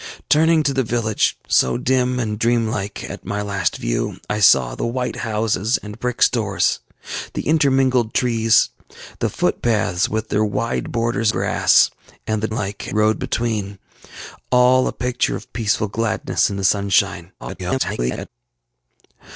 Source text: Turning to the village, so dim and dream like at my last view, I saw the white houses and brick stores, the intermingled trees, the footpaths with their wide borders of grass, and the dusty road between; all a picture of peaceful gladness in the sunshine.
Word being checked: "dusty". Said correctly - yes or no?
no